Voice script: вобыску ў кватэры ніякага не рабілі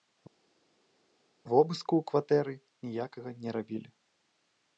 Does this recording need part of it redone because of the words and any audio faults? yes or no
no